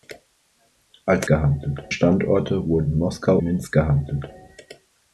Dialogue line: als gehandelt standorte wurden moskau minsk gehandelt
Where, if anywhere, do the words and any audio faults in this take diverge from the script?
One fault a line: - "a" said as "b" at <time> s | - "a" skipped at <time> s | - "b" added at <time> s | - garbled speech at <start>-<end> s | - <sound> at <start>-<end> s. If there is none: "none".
none